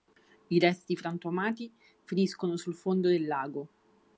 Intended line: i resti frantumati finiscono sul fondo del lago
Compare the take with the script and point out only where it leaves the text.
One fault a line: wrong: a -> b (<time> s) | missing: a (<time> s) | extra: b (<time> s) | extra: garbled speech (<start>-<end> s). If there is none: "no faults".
no faults